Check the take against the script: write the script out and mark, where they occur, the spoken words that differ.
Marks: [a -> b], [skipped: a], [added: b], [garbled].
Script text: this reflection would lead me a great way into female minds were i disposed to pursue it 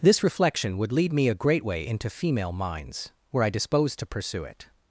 this reflection would lead me a great way into female minds were i disposed to pursue it